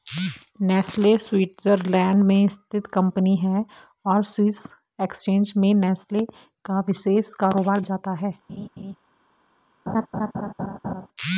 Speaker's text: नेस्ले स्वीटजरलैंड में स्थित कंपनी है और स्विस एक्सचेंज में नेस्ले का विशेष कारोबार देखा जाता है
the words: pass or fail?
fail